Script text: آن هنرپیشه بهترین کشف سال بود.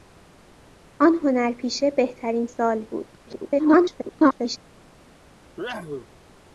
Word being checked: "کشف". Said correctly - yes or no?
no